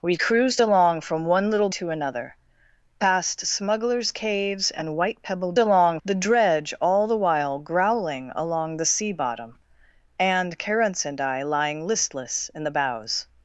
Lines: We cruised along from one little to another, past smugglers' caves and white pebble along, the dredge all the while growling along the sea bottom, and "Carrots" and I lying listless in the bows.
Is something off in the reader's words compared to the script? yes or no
no